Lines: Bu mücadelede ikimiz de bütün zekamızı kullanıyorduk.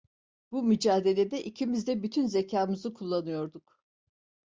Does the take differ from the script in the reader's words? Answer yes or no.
no